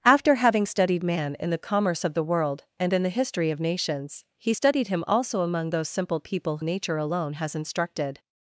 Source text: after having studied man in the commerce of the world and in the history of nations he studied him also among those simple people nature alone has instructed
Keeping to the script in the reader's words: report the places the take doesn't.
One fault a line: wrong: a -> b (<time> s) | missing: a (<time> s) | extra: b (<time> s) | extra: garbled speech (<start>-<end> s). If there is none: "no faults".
no faults